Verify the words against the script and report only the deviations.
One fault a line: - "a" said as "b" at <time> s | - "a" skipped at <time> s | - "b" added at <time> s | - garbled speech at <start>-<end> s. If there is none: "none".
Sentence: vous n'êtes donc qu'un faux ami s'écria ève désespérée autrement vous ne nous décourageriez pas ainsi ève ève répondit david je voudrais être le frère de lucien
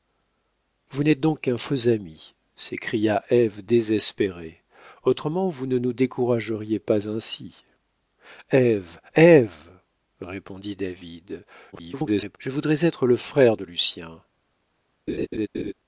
- garbled speech at 11.7-12.4 s